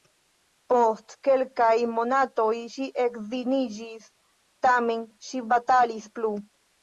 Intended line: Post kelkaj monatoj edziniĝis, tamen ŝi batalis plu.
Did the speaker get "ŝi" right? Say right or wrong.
right